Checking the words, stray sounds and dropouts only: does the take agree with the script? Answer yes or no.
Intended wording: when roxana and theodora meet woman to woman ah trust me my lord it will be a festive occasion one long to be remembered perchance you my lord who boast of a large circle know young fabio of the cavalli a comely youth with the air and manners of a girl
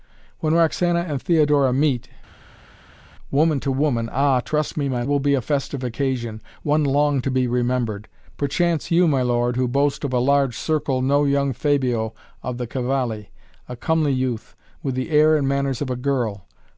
no